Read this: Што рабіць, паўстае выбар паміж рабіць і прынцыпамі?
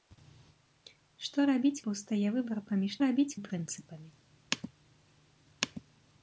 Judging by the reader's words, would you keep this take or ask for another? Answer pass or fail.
pass